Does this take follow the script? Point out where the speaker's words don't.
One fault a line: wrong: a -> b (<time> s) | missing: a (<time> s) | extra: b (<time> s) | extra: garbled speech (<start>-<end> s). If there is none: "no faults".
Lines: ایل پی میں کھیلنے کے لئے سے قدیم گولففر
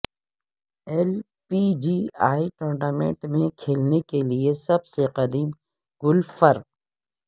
extra: جی اے ٹورنامنٹ (1.8 s)
extra: سب (4.7 s)